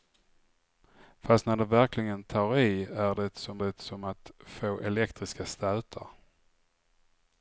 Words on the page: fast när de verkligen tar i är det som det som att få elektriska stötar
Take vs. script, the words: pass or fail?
pass